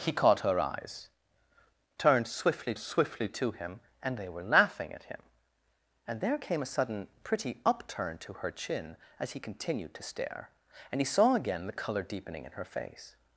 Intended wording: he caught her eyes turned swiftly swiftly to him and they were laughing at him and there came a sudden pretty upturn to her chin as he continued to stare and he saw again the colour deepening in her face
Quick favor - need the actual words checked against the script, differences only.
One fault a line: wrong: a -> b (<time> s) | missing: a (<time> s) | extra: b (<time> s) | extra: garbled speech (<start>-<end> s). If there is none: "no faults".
no faults